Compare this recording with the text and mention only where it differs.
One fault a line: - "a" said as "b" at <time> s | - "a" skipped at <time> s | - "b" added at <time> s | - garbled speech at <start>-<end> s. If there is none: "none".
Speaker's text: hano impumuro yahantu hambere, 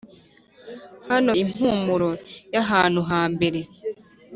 none